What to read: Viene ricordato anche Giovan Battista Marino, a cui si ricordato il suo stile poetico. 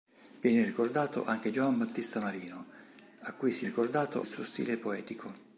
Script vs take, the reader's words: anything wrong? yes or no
no